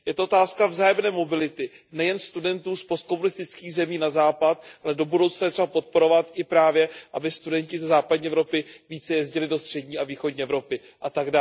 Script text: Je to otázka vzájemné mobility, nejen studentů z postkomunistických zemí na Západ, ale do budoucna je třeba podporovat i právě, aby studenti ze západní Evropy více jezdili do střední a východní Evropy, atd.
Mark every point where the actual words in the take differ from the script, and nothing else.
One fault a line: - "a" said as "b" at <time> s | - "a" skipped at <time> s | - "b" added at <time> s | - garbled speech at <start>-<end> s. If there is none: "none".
none